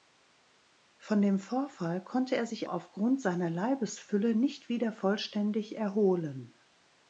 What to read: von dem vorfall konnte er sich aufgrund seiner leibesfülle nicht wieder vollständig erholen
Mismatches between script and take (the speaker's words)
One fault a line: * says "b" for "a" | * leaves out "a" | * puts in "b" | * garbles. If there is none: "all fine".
all fine